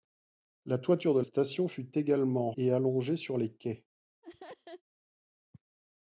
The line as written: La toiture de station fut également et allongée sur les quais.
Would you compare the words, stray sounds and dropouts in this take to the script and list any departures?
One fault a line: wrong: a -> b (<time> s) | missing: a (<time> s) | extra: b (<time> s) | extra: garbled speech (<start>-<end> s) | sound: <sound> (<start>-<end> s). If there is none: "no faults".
sound: laugh (4.2-4.8 s)